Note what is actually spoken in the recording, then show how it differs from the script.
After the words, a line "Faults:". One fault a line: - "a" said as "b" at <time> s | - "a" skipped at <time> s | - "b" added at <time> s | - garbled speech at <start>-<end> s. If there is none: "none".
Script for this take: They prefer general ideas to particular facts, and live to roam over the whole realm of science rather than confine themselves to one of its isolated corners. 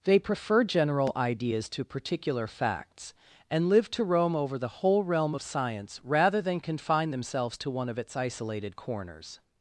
They prefer general ideas to particular facts, and live to roam over the whole realm of science rather than confine themselves to one of its isolated corners.
Faults:
none